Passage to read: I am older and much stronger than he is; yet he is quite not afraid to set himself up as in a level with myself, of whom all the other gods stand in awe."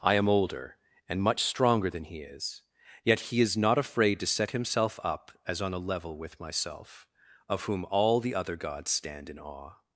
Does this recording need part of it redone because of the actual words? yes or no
yes